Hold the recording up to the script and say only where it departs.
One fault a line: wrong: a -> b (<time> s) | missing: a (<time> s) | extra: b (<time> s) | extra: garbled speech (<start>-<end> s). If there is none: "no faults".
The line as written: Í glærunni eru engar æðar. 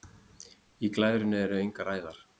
no faults